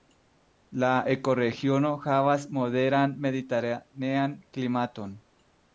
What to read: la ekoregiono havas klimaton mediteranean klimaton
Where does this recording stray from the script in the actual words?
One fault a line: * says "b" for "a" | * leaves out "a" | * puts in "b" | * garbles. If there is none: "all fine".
* says "moderan" for "klimaton"